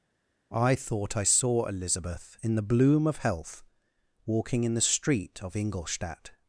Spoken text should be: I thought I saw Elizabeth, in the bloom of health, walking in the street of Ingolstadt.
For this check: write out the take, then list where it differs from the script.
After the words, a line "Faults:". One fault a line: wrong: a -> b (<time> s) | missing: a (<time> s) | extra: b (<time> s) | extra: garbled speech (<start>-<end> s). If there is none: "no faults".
I thought I saw Elizabeth, in the bloom of health, walking in the street of Ingolstadt.
Faults:
no faults